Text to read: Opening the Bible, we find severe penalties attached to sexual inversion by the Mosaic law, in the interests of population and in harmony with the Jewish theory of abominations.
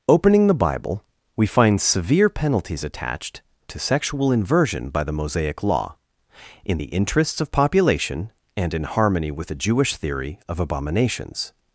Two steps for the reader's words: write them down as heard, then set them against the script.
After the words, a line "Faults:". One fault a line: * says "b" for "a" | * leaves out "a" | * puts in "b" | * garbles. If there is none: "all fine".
Opening the Bible, we find severe penalties attached to sexual inversion by the Mosaic law, in the interests of population and in harmony with the Jewish theory of abominations.
Faults:
all fine